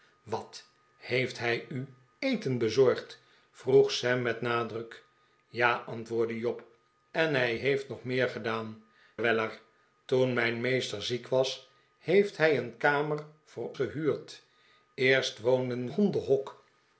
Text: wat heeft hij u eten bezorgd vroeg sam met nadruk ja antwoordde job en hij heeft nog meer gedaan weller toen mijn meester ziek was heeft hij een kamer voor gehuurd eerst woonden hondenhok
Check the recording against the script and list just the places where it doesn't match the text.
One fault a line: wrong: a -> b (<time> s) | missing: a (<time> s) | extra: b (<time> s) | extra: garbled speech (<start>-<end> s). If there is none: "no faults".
no faults